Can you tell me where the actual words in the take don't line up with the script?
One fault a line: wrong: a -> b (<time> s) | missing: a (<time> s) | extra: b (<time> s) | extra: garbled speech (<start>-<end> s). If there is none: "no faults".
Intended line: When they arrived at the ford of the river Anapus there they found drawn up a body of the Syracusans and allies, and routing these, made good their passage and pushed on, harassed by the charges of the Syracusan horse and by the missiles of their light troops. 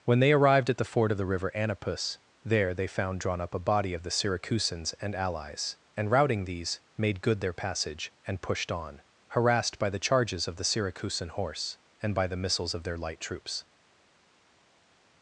no faults